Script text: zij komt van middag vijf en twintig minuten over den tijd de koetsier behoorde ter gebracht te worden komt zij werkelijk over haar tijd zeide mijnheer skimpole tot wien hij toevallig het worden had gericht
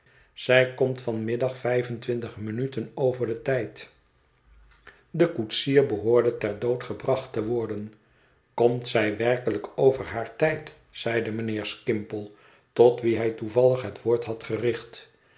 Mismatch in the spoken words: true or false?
true